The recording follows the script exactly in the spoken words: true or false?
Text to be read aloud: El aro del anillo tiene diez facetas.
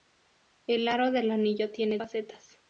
false